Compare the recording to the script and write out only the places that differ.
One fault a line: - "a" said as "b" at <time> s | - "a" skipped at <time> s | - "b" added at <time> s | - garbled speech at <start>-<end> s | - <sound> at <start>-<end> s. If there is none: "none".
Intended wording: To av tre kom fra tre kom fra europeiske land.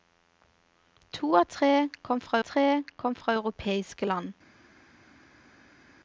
none